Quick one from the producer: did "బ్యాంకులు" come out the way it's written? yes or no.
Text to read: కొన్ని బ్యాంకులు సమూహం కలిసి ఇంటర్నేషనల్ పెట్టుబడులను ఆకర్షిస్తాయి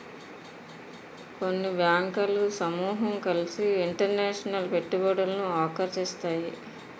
yes